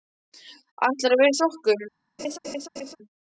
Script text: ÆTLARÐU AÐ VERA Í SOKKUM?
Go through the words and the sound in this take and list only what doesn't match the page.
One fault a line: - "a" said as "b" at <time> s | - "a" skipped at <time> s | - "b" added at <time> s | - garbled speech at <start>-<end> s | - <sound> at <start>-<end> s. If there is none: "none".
- laugh at 2.2-3.0 s